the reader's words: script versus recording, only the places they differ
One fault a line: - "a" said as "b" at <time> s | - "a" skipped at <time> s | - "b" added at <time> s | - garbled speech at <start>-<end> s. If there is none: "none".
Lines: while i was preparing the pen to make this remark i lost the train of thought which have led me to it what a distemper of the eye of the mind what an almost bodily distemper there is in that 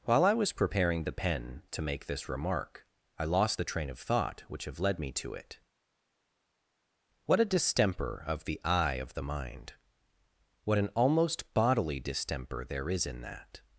none